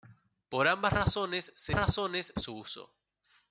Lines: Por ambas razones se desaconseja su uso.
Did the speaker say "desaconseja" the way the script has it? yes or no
no